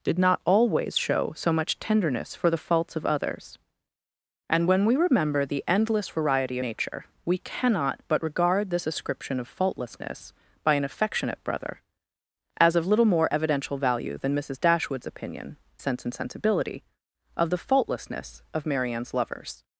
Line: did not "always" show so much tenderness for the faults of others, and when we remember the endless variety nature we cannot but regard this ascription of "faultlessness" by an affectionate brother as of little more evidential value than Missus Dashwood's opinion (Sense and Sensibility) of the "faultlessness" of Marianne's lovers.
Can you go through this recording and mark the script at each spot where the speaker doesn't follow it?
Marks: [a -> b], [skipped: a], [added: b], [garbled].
did not "always" show so much tenderness for the faults of others, and when we remember the endless variety nature we cannot but regard this ascription of "faultlessness" by an affectionate brother as of little more evidential value than Missus Dashwood's opinion (Sense and Sensibility) of the "faultlessness" of Marianne's lovers.